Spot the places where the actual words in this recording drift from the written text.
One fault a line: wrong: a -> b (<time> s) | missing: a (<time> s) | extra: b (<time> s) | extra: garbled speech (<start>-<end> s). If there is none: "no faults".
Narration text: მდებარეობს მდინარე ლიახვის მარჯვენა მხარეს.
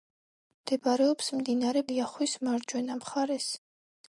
no faults